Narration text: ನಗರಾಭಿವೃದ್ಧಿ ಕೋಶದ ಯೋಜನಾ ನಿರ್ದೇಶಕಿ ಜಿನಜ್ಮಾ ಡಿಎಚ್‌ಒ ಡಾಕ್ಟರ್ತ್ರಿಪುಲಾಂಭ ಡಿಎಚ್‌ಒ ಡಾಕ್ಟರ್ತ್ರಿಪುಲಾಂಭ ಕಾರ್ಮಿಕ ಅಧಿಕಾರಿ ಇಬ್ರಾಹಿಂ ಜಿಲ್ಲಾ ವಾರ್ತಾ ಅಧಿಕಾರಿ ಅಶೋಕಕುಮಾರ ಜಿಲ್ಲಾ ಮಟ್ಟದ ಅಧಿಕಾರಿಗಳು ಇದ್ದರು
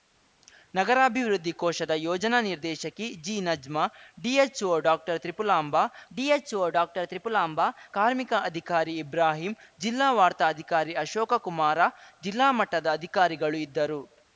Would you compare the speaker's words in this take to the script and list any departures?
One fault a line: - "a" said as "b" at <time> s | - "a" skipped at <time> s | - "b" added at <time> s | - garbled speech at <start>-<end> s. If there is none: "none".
none